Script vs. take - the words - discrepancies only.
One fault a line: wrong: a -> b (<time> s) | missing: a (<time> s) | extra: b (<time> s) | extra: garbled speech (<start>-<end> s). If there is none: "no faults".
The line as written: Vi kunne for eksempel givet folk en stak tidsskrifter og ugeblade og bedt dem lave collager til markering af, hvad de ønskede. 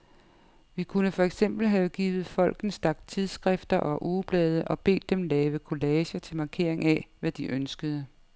extra: have (1.7 s)